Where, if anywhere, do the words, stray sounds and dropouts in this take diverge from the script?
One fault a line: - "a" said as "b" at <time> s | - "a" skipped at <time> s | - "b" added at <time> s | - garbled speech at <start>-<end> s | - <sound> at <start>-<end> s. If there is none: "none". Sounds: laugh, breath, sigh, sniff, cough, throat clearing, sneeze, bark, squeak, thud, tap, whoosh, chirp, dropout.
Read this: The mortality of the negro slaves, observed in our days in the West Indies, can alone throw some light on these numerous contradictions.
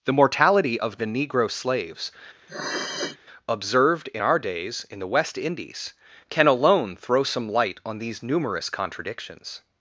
- sniff at 2.5-3.2 s